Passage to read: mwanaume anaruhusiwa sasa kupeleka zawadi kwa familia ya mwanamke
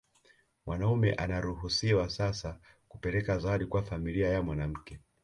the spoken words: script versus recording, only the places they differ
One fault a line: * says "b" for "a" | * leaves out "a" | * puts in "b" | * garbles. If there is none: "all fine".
all fine